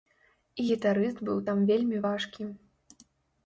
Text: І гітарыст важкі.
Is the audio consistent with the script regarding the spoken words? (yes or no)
no